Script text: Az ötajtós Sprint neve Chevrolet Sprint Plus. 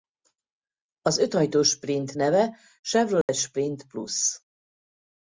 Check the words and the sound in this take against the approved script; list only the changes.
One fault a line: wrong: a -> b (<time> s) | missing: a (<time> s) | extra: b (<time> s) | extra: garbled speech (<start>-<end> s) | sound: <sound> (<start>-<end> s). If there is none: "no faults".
sound: dropout (3.2-3.3 s)